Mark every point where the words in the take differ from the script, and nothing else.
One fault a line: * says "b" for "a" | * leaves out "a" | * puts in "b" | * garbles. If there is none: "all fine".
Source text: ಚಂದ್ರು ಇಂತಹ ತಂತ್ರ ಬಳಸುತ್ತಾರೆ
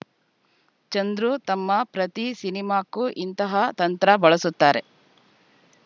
* puts in "ತಮ್ಮ ಪ್ರತಿ ಸಿನಿಮಾಕ್ಕೂ"